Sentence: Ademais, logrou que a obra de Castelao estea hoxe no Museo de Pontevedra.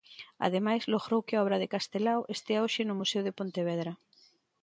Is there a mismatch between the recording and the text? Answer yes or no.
no